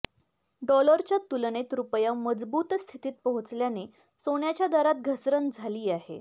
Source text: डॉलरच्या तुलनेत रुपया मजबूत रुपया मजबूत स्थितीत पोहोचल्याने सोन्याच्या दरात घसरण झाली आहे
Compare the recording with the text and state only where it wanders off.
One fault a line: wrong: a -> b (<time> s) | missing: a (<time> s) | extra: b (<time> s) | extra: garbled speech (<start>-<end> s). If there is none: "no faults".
missing: रुपया मजबूत (2.7 s)